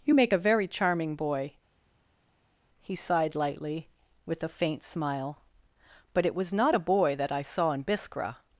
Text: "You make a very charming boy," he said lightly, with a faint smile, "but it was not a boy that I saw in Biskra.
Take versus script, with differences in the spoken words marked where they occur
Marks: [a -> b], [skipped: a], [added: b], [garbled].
"You make a very charming boy," he [said -> sighed] lightly, with a faint smile, "but it was not a boy that I saw in Biskra.